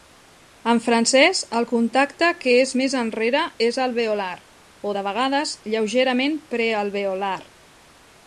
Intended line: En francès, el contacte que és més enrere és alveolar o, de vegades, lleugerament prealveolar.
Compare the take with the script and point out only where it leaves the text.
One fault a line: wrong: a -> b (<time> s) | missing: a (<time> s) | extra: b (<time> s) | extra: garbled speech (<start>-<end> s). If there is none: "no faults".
no faults